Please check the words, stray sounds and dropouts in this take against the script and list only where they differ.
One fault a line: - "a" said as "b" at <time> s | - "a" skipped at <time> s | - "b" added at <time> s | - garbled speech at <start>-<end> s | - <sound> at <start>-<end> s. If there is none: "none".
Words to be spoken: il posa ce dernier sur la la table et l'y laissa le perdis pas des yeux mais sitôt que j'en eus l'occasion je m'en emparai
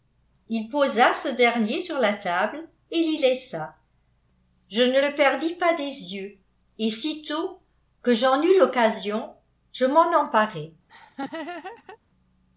- "la" skipped at 2.1 s
- "je ne" added at 4.7 s
- "mais" said as "et" at 6.8 s
- laugh at 10.9-12.0 s